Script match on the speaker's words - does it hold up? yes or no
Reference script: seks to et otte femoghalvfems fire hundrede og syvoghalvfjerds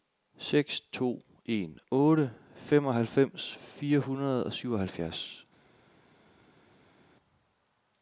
no